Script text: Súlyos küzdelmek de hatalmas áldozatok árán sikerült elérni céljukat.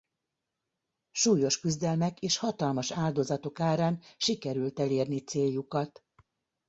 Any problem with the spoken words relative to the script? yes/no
yes